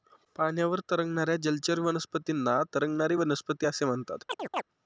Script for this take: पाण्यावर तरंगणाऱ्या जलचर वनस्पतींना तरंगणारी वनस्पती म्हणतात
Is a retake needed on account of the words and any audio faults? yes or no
yes